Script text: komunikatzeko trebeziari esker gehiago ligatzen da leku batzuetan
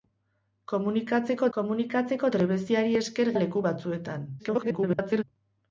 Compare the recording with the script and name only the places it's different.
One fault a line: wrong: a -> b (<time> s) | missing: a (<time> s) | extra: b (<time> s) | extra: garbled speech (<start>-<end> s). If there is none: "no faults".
extra: komunikatzeko (1.6 s)
missing: gehiago ligatzen (3.3 s)
extra: garbled speech (4.4-5.2 s)